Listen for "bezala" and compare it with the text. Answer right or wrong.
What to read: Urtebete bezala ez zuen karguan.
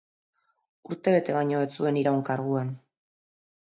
wrong